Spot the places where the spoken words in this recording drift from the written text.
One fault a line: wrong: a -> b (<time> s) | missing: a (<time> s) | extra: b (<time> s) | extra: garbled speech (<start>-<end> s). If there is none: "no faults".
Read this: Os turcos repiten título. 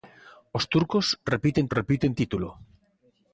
extra: repiten (1.8 s)